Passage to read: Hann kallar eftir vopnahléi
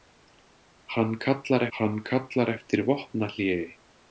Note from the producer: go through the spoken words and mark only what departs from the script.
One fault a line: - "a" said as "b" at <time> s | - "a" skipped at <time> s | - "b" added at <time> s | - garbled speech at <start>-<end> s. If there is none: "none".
- "hann kallar" added at 1.8 s